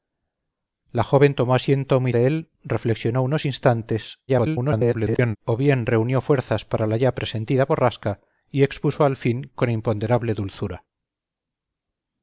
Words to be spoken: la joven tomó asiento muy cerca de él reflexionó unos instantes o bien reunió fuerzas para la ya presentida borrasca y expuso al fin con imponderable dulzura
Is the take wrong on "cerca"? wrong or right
wrong